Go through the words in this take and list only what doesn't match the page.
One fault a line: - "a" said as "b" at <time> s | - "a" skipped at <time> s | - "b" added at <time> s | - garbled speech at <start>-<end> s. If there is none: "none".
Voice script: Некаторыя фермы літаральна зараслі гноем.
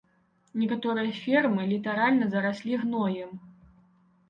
none